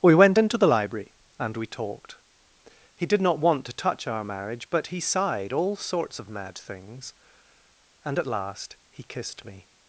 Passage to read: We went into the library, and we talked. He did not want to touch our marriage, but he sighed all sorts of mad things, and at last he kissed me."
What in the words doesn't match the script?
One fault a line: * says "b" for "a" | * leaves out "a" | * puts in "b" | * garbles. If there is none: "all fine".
all fine